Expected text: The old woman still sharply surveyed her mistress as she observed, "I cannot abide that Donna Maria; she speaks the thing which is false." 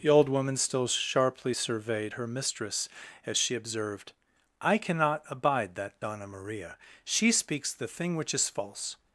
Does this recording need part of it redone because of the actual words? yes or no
no